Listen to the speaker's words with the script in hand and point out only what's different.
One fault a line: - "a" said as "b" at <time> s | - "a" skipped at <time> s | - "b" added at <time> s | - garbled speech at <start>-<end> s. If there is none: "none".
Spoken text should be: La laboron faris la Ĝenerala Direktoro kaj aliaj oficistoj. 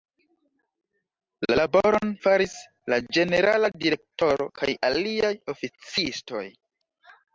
none